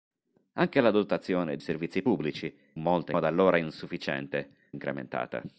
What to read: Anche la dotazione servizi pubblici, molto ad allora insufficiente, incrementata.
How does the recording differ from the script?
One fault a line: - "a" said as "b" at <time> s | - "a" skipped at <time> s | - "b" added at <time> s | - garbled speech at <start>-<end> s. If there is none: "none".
none